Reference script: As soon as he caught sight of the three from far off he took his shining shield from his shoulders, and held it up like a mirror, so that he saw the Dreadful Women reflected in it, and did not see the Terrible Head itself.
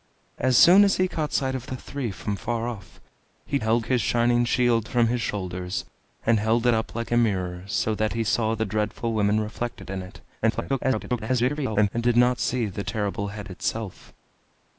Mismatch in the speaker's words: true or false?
true